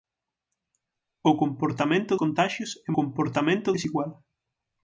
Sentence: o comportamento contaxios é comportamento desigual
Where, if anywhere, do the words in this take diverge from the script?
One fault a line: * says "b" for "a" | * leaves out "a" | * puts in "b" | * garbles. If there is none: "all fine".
all fine